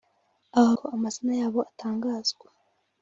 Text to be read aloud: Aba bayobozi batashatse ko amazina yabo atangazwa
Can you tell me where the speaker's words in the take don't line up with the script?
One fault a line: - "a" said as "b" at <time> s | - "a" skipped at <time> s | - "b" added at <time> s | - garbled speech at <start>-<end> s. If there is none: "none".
- "bayobozi batashatse" skipped at 0.7 s